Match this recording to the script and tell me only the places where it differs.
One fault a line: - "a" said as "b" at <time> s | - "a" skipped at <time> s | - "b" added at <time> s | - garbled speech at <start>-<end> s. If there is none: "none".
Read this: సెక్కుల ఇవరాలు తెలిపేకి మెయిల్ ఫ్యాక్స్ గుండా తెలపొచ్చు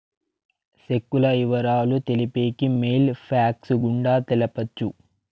none